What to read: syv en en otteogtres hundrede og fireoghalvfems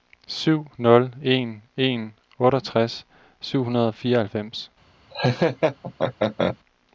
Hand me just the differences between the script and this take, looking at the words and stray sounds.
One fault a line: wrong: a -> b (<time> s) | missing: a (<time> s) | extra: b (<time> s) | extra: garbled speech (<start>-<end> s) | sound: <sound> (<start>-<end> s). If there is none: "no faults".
extra: nul (0.8 s)
extra: syv (3.4 s)
sound: laugh (5.1-6.6 s)